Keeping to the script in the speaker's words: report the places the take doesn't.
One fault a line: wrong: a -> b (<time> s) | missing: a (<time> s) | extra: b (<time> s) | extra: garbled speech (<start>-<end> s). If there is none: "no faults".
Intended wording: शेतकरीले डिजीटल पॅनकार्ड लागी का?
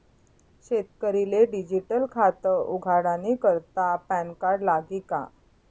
extra: खातं उघाडानी करता (2.1 s)